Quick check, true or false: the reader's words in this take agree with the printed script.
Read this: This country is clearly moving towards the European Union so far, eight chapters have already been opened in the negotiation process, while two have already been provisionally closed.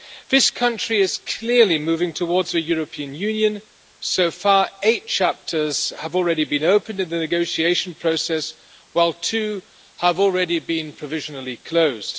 true